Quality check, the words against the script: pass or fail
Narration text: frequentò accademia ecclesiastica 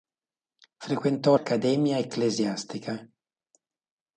pass